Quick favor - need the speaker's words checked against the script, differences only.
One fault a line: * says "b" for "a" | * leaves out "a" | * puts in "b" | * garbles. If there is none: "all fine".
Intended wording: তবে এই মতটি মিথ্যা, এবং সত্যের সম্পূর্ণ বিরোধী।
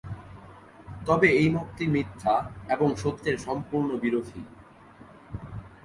all fine